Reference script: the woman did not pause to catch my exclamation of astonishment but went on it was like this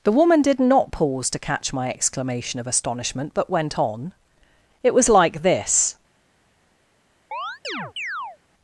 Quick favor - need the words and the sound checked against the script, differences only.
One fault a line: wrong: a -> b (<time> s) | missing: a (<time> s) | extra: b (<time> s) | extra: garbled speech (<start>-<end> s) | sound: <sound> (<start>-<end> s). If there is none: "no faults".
sound: chirp (7.3-8.4 s)